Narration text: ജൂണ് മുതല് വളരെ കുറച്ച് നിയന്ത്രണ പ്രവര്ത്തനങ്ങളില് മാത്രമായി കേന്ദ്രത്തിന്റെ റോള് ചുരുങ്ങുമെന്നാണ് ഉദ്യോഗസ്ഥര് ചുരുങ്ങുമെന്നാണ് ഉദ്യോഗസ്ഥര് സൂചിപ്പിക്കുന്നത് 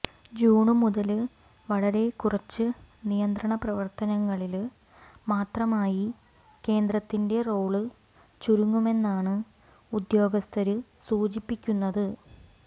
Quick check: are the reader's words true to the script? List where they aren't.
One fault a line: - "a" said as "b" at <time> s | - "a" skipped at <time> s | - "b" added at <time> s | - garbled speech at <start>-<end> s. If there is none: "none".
- "ചുരുങ്ങുമെന്നാണ് ഉദ്യോഗസ്ഥര്" skipped at 10.8 s